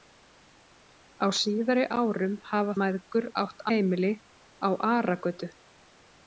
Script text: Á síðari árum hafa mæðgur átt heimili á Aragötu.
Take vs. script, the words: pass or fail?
pass